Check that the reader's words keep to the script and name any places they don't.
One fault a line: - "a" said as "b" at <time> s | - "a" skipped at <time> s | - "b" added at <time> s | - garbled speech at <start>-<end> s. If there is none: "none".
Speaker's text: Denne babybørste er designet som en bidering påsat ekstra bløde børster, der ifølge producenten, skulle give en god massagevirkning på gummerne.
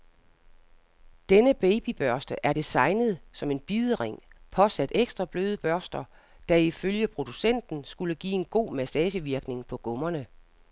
none